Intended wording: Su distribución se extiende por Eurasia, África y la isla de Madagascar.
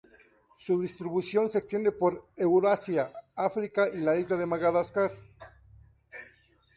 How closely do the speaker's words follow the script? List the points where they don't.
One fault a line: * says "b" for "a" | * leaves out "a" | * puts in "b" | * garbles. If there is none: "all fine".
all fine